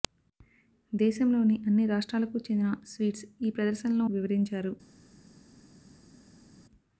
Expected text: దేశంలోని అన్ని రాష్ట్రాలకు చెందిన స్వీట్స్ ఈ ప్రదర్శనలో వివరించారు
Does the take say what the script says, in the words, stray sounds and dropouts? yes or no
yes